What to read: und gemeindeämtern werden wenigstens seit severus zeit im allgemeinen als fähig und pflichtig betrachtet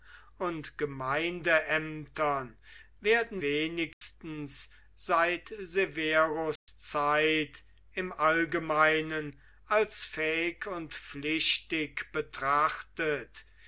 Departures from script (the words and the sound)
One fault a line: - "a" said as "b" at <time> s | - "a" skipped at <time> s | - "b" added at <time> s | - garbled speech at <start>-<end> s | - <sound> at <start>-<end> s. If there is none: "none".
- dropout at 3.9-4.0 s
- dropout at 6.6-6.7 s